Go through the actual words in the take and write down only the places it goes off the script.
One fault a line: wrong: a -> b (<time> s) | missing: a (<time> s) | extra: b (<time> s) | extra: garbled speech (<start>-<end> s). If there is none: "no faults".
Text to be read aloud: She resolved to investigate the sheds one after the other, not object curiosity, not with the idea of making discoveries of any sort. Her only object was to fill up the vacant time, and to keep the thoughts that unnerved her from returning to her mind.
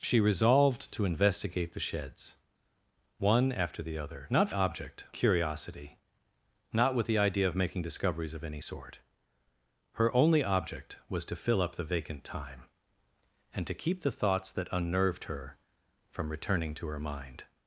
no faults